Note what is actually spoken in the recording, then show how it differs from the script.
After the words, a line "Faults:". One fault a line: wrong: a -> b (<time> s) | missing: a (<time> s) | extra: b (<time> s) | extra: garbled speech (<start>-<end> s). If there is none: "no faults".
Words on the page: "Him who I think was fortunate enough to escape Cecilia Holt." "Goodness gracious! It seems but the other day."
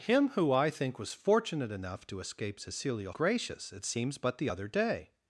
"Him who I think was fortunate enough to escape Cecilia Gracious! It seems but the other day."
Faults:
missing: Holt Goodness (3.1 s)